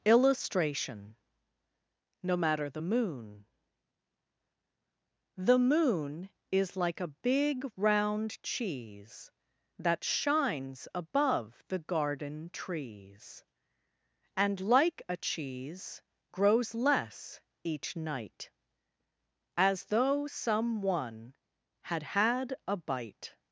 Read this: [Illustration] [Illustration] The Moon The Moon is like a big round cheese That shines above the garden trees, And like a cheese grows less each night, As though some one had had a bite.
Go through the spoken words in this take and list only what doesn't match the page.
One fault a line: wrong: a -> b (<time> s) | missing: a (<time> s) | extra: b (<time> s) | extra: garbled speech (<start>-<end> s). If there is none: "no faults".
wrong: Illustration -> No matter (2.2 s)